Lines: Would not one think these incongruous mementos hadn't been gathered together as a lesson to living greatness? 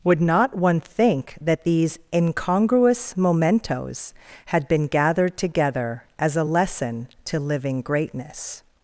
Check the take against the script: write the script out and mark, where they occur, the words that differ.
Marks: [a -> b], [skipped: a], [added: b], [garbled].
Would not one think [added: that] these incongruous mementos [hadn't -> had] been gathered together as a lesson to living greatness?